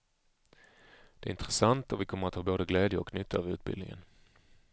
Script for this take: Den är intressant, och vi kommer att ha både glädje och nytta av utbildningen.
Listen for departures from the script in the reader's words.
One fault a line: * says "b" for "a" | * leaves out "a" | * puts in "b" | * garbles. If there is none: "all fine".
* says "Det" for "Den"